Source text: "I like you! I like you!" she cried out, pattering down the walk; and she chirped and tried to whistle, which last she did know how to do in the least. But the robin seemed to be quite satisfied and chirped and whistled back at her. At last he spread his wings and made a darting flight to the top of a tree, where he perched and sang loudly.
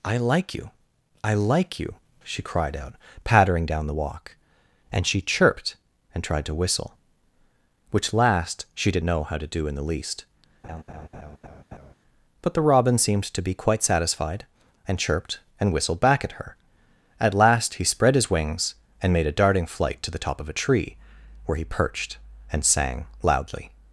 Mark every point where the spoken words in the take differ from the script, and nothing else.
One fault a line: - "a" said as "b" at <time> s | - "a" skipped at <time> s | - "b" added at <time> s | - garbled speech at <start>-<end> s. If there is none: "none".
none